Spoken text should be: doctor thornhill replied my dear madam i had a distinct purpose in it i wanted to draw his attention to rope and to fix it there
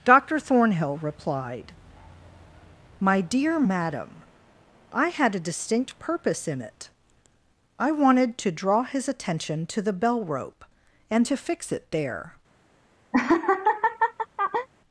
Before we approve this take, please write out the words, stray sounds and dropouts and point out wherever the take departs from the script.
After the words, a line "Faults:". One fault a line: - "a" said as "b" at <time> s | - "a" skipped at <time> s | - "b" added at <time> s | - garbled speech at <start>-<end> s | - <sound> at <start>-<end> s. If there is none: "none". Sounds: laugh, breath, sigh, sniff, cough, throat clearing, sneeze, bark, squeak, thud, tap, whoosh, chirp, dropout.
doctor thornhill replied my dear madam i had a distinct purpose in it i wanted to draw his attention to the bell rope and to fix it there
Faults:
- "the bell" added at 9.8 s
- laugh at 13.1-14.7 s